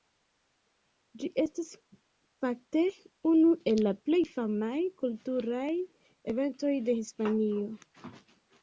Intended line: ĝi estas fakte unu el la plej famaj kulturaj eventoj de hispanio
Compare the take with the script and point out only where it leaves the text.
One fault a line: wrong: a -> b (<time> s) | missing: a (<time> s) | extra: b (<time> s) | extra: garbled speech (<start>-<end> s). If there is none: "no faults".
no faults